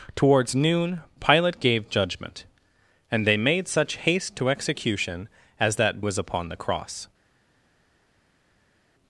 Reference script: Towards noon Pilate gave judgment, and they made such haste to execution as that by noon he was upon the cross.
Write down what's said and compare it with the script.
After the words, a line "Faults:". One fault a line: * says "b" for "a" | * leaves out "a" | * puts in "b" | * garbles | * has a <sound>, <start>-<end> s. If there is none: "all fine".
Towards noon Pilate gave judgment, and they made such haste to execution as that was upon the cross.
Faults:
* leaves out "by noon he"